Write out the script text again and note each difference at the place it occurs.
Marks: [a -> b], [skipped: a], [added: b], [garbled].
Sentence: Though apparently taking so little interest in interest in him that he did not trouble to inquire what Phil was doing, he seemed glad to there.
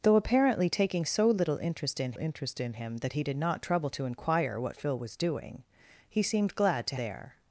Though apparently taking so little interest in interest in him that he did not trouble to inquire what Phil was doing, he seemed glad to there.